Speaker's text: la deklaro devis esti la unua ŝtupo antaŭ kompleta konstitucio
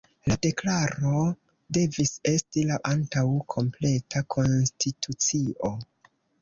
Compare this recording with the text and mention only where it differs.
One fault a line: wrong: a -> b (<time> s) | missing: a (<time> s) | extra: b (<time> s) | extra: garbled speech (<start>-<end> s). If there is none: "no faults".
missing: unua ŝtupo (2.8 s)